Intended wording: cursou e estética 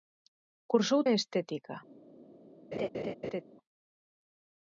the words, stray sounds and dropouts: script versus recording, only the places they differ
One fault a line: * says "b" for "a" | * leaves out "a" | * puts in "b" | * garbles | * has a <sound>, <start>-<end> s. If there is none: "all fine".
* has a laugh, 2.7-3.4 s